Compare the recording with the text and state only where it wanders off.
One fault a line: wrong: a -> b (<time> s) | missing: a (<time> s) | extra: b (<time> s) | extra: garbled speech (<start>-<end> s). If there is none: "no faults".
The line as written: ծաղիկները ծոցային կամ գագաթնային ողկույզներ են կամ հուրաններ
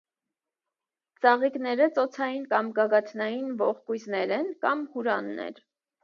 no faults